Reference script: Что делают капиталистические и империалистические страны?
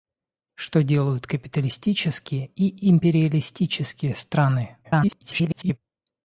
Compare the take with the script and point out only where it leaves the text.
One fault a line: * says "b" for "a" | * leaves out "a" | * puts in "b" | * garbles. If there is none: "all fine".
* garbles